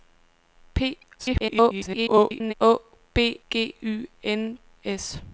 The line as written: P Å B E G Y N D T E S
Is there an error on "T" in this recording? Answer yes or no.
yes